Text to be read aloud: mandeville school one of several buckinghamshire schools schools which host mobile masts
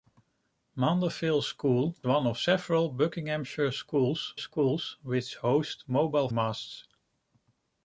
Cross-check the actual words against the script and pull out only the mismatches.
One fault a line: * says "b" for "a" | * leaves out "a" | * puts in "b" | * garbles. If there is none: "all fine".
all fine